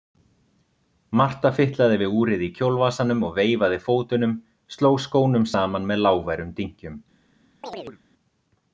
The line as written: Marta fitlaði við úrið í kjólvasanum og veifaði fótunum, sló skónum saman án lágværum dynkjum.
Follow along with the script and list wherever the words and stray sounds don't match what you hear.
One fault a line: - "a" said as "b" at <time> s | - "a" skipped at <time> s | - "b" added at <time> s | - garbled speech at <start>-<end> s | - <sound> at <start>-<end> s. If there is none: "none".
- "án" said as "með" at 5.9 s
- chirp at 7.6-8.0 s